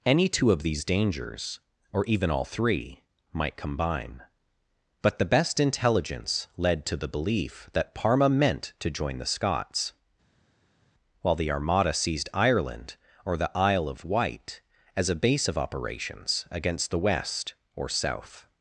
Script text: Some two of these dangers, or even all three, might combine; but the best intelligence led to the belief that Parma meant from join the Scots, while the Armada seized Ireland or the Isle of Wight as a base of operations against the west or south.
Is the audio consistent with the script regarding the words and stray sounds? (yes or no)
no